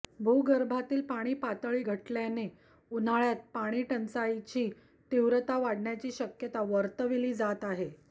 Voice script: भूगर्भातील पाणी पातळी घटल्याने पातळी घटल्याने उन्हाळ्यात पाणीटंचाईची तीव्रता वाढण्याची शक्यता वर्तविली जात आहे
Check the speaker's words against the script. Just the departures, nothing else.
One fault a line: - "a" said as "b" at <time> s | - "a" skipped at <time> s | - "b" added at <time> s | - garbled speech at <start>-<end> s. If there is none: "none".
- "पातळी घटल्याने" skipped at 2.5 s